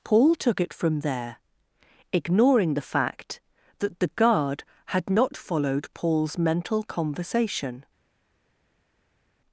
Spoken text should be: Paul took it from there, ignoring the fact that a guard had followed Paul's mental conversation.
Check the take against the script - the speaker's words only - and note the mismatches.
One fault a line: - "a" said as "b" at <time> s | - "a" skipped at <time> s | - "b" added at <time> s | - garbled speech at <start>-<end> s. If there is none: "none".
- "a" said as "the" at 4.0 s
- "not" added at 5.1 s